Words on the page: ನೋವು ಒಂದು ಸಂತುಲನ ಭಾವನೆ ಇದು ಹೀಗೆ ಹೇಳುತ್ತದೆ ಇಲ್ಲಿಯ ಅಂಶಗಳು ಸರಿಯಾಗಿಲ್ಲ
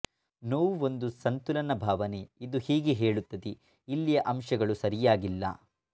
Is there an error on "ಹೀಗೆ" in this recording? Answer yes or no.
no